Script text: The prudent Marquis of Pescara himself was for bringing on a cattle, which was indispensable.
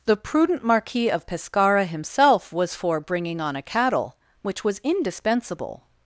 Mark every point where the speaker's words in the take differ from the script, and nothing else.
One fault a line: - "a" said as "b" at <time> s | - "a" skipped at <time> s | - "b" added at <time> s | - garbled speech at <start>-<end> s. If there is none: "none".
none